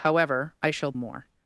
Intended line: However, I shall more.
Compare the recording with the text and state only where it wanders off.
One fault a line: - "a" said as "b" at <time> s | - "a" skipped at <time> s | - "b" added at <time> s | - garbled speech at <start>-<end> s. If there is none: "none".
none